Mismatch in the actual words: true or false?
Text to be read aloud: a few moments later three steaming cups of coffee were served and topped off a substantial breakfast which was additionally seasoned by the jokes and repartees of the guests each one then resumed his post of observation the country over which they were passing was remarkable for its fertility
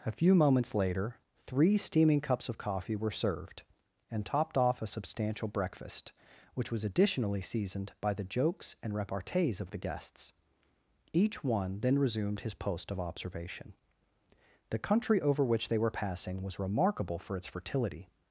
false